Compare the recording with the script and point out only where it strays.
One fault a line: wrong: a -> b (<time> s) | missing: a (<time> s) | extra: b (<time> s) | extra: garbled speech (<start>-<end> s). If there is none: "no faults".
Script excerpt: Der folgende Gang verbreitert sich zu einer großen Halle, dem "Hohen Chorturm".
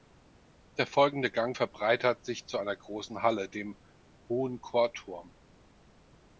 no faults